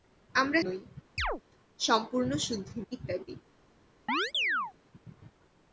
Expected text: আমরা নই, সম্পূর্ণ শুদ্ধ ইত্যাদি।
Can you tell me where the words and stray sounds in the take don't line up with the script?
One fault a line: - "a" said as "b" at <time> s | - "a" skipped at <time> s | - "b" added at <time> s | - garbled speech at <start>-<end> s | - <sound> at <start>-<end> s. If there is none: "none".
- chirp at 1.2-1.4 s
- chirp at 4.1-4.7 s